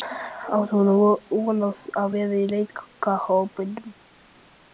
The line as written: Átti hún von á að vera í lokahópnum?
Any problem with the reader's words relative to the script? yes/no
no